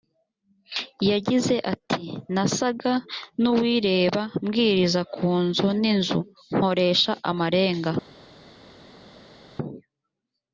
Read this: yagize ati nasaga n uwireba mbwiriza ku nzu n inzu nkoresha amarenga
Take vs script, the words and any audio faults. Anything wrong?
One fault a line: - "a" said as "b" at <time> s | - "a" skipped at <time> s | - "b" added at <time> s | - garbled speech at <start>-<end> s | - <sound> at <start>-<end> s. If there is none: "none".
none